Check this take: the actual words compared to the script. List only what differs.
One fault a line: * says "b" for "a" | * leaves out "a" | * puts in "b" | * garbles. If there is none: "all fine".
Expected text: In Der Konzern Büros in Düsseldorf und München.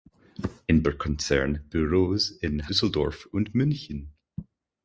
all fine